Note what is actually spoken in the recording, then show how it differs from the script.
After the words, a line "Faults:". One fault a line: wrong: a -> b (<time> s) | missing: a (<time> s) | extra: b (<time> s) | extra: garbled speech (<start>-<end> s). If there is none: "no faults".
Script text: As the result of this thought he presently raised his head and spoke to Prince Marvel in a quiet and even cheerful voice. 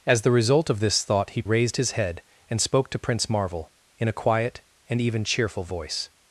As the result of this thought he raised his head and spoke to Prince Marvel in a quiet and even cheerful voice.
Faults:
missing: presently (1.4 s)